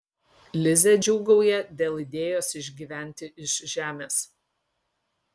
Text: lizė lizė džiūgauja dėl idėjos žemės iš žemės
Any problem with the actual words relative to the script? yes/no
yes